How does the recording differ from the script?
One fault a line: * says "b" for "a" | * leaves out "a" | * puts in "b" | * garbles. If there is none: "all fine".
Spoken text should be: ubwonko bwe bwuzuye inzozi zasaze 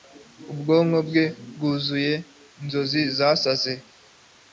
all fine